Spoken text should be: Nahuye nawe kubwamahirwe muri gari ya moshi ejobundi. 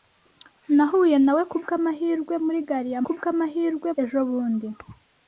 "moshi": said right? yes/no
no